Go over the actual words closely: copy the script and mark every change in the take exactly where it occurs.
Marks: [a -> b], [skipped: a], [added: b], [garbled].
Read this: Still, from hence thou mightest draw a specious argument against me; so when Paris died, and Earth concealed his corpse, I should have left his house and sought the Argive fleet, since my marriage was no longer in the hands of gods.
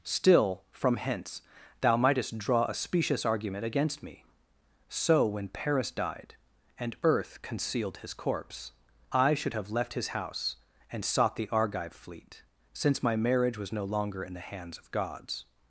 Still, from hence thou mightest draw a specious argument against me; so when Paris died, and Earth concealed his corpse, I should have left his house and sought the Argive fleet, since my marriage was no longer in the hands of gods.